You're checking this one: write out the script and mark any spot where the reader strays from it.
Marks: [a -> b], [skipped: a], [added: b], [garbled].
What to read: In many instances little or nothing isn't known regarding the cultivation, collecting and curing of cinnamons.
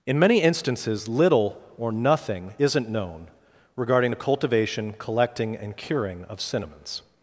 In many instances little or nothing isn't known regarding the cultivation, collecting and curing of cinnamons.